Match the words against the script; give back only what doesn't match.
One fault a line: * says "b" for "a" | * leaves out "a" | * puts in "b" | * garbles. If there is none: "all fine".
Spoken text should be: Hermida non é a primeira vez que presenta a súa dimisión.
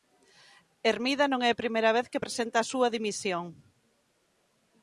all fine